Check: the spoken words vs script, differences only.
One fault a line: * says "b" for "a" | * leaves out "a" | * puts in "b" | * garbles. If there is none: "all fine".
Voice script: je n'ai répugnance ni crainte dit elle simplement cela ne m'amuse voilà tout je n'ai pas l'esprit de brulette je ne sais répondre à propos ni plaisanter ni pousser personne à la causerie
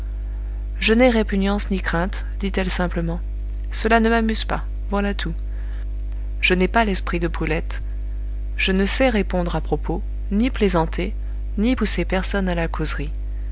* puts in "pas"